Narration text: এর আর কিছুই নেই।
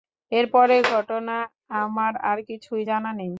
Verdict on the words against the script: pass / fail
fail